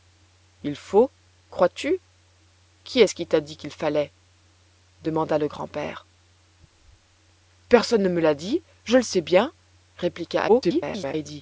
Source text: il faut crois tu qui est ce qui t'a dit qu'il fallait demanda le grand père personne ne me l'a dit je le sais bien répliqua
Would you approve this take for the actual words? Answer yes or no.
no